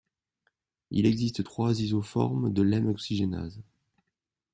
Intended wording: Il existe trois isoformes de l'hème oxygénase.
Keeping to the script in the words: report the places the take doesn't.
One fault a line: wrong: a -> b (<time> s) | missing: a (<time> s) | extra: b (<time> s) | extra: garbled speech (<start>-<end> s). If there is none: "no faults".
no faults